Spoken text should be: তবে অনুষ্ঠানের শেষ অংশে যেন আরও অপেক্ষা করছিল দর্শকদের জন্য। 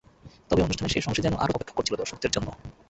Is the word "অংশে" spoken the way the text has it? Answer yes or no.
yes